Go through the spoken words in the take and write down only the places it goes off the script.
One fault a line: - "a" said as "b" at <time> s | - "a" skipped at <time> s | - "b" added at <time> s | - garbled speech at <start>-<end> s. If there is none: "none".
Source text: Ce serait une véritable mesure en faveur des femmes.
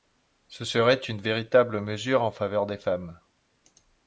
none